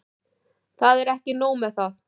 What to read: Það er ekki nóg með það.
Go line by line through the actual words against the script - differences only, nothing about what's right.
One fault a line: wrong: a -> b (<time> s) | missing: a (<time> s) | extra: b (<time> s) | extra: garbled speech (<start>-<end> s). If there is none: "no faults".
no faults